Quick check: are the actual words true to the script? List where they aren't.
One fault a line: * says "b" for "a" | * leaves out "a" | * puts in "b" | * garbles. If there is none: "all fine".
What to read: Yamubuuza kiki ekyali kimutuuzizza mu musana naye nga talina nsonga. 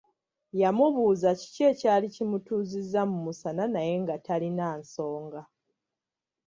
all fine